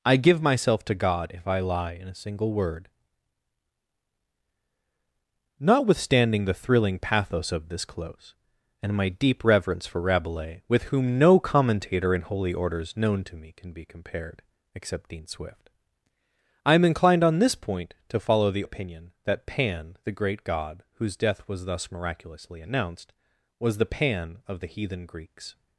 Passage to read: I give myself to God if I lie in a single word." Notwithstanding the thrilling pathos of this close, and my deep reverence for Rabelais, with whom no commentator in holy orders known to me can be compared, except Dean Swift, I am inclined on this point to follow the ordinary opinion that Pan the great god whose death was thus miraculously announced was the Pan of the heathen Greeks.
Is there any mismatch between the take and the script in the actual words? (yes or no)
yes